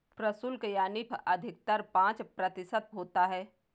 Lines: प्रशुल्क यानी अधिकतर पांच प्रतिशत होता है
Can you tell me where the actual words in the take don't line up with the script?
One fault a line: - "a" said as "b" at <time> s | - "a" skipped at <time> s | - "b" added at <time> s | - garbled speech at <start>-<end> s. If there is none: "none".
none